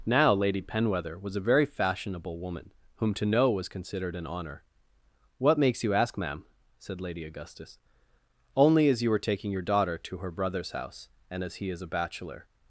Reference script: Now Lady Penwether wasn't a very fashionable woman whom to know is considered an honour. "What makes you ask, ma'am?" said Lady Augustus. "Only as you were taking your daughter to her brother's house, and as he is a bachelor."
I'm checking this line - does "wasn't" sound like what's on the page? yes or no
no